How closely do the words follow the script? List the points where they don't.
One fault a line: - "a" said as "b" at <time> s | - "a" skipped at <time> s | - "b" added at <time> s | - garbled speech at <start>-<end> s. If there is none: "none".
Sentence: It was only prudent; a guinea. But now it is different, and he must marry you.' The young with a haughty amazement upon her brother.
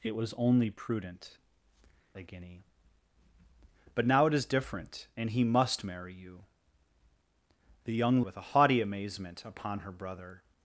none